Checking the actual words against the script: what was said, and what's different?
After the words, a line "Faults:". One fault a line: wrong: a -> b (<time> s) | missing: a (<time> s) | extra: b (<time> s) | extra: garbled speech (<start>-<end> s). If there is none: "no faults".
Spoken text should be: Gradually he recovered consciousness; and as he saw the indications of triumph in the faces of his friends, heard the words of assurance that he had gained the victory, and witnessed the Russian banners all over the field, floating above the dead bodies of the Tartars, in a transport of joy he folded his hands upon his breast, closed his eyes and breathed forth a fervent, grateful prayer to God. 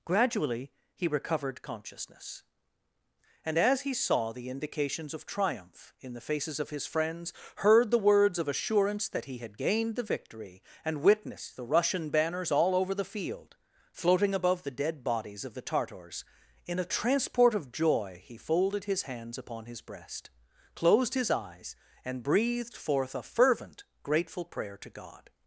Gradually he recovered consciousness; and as he saw the indications of triumph in the faces of his friends, heard the words of assurance that he had gained the victory, and witnessed the Russian banners all over the field, floating above the dead bodies of the Tartars, in a transport of joy he folded his hands upon his breast, closed his eyes and breathed forth a fervent, grateful prayer to God.
Faults:
no faults